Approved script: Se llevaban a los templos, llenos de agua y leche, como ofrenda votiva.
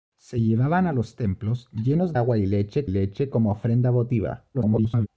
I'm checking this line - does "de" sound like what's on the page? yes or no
no